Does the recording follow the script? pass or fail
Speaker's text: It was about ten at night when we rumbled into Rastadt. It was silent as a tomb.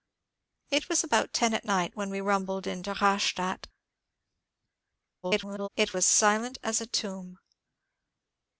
fail